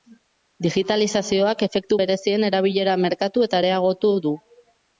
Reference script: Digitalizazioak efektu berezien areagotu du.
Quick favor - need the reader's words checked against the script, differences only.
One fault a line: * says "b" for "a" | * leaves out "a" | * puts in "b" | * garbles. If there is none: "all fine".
* puts in "erabilera merkatu eta"